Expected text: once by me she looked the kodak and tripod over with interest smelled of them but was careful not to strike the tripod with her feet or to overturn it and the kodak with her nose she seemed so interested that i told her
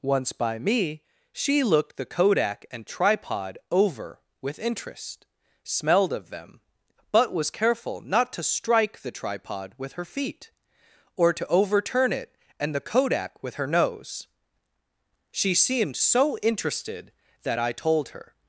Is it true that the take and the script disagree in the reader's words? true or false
false